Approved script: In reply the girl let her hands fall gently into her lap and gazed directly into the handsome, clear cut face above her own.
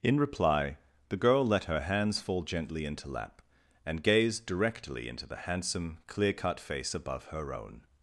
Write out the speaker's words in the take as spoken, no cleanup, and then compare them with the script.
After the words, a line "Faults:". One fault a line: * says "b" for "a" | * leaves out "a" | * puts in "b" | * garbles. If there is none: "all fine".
In reply the girl let her hands fall gently into lap and gazed directly into the handsome, clear cut face above her own.
Faults:
* leaves out "her"